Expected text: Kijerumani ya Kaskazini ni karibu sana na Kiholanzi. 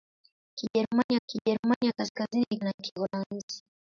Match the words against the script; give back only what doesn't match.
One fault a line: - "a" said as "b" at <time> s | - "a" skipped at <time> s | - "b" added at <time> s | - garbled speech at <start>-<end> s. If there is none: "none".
- "kijerumani" added at 1.3 s
- "karibu sana" skipped at 2.6 s